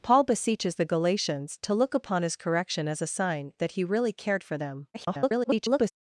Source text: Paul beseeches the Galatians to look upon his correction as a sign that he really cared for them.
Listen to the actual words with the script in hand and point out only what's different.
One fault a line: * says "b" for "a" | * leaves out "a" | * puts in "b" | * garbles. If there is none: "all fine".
* garbles